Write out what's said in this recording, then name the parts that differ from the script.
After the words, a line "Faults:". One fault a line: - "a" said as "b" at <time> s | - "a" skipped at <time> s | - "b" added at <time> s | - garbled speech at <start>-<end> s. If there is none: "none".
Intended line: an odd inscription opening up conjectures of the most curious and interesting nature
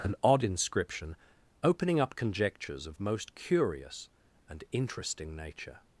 an odd inscription opening up conjectures of most curious and interesting nature
Faults:
- "the" skipped at 3.0 s